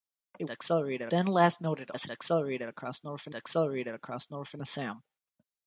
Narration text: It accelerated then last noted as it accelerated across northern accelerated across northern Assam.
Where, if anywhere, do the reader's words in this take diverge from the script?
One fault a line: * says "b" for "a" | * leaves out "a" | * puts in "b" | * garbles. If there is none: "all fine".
all fine